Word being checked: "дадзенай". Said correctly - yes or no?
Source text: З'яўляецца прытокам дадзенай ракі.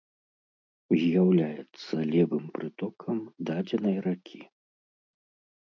yes